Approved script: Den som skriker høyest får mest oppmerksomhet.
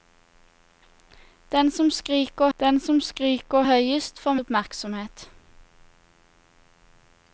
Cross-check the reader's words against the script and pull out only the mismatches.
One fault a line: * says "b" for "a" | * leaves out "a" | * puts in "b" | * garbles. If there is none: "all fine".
* puts in "den som skriker"
* leaves out "mest"